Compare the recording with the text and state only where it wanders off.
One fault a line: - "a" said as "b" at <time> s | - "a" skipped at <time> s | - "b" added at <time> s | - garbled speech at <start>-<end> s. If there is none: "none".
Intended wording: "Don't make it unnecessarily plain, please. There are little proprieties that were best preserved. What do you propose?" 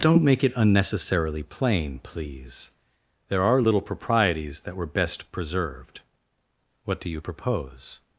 none